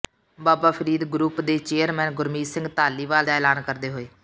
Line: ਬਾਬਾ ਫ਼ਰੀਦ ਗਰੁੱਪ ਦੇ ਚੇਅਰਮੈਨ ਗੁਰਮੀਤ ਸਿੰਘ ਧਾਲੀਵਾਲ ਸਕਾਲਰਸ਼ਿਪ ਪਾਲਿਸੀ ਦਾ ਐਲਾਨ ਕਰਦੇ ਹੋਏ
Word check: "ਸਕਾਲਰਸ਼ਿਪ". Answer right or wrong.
wrong